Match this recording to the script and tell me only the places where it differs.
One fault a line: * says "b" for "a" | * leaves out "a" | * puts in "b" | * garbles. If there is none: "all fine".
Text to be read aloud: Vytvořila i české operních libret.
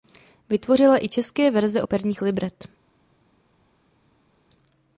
* puts in "verze"